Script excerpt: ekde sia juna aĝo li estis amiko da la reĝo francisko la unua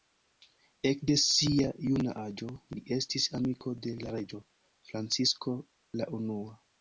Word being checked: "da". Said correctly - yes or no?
no